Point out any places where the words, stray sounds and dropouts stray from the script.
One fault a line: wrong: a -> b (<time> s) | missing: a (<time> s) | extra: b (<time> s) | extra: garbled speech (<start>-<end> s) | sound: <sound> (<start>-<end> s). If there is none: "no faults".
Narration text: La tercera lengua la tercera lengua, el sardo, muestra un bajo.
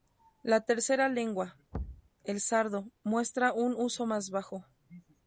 missing: la tercera lengua (1.6 s)
sound: thud (1.7-2.1 s)
extra: uso más (3.7 s)